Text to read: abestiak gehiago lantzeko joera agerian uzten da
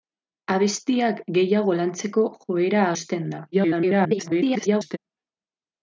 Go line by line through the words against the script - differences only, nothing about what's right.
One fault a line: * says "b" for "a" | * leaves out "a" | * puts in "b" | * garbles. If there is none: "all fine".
* leaves out "agerian"
* garbles